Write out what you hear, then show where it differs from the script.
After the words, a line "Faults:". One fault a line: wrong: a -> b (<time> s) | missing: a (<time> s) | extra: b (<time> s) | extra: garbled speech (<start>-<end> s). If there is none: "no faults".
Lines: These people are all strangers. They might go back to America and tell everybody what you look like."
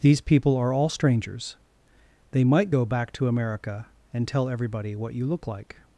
These people are all strangers. They might go back to America and tell everybody what you look like."
Faults:
no faults